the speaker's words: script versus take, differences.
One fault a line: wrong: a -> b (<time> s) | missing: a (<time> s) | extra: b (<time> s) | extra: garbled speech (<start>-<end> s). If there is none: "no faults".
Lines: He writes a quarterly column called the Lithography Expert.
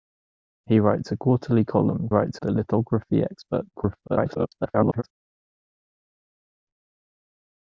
wrong: called -> writes (2.1 s)
extra: garbled speech (3.7-5.0 s)